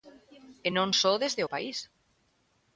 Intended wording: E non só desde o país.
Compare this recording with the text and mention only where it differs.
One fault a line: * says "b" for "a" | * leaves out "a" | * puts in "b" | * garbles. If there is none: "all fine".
all fine